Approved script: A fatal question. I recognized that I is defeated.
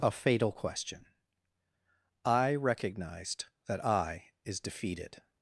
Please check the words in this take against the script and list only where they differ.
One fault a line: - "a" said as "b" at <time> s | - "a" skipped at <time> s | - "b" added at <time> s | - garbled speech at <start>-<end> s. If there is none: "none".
none